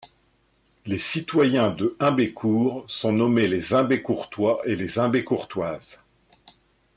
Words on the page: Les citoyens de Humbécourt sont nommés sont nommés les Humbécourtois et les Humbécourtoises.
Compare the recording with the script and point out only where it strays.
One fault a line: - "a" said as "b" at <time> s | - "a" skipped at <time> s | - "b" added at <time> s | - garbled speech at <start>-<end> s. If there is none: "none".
- "sont nommés" skipped at 3.5 s